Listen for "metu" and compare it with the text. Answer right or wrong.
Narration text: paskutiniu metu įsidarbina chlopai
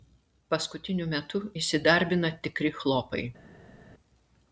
right